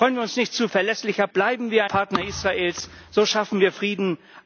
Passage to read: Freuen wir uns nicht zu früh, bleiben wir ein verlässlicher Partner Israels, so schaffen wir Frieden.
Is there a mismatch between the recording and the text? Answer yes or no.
yes